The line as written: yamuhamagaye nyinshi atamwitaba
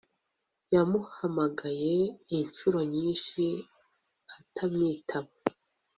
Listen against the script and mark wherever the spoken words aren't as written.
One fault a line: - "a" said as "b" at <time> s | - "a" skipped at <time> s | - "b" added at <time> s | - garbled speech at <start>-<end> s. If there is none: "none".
- "inshuro" added at 2.4 s